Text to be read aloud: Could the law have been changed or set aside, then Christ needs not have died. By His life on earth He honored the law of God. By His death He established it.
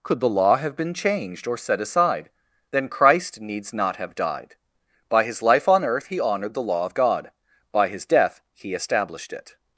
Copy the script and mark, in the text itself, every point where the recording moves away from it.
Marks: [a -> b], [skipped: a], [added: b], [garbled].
Could the law have been changed or set aside, then Christ needs not have died. By His life on earth He honored the law of God. By His death He established it.